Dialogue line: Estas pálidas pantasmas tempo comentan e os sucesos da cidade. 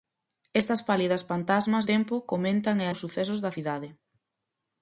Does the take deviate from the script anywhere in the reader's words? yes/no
no